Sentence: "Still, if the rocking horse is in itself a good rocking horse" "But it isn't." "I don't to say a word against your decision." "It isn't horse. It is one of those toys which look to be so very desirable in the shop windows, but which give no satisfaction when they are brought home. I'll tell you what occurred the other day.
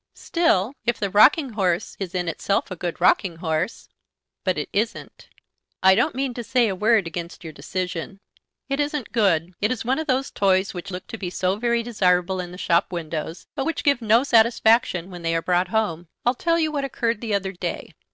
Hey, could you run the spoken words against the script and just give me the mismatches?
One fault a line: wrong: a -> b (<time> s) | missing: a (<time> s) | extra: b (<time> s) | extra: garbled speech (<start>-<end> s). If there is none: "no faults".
extra: mean (6.2 s)
wrong: horse -> good (9.1 s)